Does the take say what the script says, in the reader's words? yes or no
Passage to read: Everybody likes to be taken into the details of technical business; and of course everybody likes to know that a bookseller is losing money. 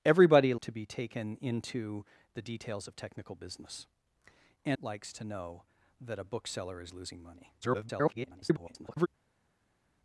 no